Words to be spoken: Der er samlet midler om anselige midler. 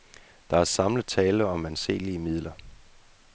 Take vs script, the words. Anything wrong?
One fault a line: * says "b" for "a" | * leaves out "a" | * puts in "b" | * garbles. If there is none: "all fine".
* says "tale" for "midler"